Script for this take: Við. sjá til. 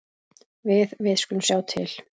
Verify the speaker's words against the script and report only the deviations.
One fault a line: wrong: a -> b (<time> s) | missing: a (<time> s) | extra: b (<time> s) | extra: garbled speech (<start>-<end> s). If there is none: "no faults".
extra: við skulum (1.1 s)